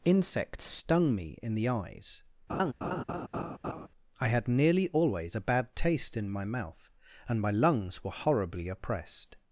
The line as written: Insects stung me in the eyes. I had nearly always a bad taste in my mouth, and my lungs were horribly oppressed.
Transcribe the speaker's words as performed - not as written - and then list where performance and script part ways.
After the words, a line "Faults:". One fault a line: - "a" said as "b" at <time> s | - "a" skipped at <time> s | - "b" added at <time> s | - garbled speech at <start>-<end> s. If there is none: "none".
Insects stung me in the eyes. I had nearly always a bad taste in my mouth, and my lungs were horribly oppressed.
Faults:
none